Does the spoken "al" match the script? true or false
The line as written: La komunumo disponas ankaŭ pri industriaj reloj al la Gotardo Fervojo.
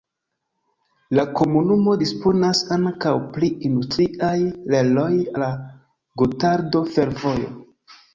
false